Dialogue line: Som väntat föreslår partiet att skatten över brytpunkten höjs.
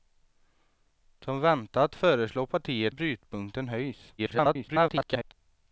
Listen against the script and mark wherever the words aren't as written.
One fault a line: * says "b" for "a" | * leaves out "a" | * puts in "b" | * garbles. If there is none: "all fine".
* leaves out "att skatten över"
* garbles